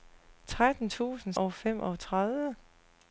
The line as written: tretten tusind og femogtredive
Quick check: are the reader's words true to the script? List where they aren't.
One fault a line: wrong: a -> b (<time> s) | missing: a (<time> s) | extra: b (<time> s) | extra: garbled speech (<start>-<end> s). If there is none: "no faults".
no faults